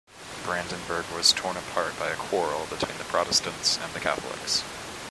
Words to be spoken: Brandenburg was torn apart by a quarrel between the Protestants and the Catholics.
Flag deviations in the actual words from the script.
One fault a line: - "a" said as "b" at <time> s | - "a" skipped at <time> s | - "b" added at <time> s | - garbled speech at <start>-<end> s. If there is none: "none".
none